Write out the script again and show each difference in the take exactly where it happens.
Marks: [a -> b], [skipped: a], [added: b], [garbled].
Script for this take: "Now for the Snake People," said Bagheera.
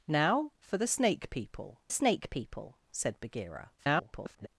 "Now for the Snake People," [added: Snake People] said Bagheera. [garbled]